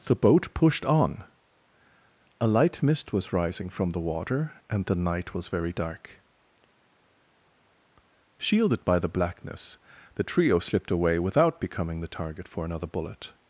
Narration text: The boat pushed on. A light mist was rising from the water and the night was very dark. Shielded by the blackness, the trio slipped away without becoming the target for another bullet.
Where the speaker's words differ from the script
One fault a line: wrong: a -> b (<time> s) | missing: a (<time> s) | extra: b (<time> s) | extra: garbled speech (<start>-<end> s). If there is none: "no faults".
no faults